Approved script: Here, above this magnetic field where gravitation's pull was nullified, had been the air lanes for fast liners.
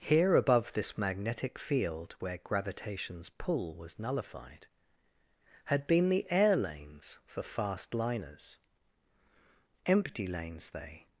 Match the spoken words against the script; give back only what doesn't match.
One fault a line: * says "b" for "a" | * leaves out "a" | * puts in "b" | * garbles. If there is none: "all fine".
* puts in "Empty lanes they"